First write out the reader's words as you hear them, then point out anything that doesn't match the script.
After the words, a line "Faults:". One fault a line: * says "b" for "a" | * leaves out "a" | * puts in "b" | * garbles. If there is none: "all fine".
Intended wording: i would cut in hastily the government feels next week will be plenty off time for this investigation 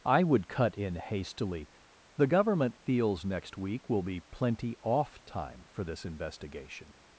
i would cut in hastily the government feels next week will be plenty off time for this investigation
Faults:
all fine